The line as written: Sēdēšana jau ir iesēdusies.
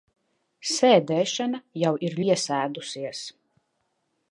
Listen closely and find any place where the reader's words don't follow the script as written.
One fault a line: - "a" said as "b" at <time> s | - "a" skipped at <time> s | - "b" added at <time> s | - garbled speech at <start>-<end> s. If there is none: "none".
none